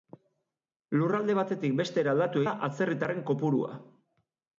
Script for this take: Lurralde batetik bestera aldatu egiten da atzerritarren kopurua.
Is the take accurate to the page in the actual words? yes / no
no